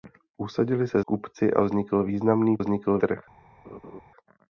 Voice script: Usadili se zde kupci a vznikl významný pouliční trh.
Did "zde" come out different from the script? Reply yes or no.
yes